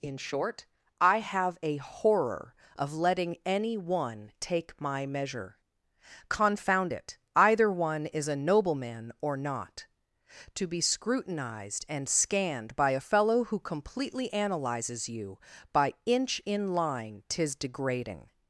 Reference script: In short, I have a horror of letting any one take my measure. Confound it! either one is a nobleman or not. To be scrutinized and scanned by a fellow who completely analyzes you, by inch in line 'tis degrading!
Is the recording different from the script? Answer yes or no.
no